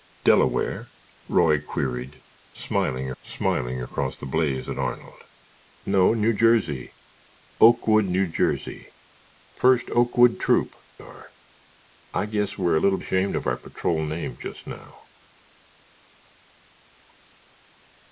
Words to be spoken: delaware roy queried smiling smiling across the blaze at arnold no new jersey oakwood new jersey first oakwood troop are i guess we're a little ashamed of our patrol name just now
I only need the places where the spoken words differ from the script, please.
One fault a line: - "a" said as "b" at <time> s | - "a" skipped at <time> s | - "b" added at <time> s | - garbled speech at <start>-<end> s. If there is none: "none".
none